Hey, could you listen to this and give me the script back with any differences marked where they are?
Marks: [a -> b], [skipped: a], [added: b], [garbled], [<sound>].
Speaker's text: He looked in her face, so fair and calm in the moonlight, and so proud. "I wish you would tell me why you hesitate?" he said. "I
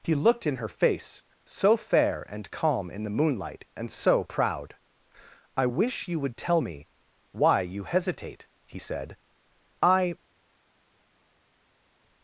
He looked in her face, so fair and calm in the moonlight, and so proud. "I wish you would tell me why you hesitate?" he said. "I